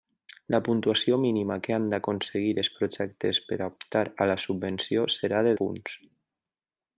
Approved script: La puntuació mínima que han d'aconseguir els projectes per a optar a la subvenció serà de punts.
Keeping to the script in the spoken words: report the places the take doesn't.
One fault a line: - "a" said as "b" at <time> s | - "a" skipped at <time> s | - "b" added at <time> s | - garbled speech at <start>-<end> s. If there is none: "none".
none